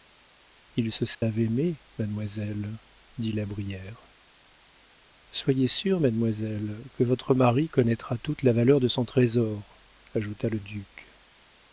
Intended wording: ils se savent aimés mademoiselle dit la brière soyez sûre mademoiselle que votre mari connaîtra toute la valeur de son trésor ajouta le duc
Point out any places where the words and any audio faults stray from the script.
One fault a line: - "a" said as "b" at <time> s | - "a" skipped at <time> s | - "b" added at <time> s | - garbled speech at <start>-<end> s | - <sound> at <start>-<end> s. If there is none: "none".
- dropout at 1.1-1.2 s